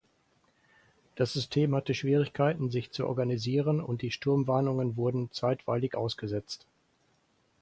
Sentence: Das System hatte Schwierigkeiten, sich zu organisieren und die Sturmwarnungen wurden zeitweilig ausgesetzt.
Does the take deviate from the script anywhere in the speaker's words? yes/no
no